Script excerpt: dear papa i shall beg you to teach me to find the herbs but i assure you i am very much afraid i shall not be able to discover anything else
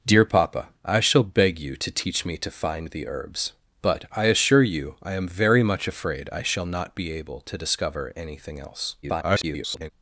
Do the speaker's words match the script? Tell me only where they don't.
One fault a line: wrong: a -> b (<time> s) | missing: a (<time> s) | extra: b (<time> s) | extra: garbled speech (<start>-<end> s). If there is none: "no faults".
extra: garbled speech (9.0-9.9 s)